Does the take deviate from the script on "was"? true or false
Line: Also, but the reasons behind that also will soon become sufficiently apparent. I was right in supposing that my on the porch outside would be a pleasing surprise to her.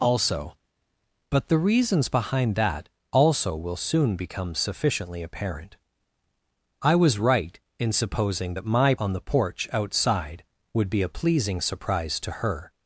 false